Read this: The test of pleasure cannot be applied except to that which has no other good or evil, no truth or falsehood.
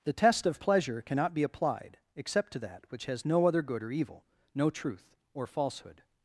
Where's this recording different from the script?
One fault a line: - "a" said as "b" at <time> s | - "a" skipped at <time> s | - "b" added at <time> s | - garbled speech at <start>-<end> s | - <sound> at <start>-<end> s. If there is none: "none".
none